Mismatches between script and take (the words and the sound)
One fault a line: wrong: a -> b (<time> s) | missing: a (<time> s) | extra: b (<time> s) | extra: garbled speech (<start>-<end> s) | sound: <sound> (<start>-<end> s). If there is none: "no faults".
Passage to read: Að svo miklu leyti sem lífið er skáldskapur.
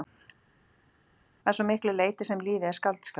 no faults